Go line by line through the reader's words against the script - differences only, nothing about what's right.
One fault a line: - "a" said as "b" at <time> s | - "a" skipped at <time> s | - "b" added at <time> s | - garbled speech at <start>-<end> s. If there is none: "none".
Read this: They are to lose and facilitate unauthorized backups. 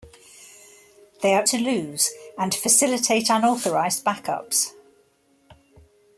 none